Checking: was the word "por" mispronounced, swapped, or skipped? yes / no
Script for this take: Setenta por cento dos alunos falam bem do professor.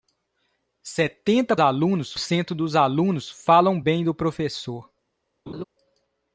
yes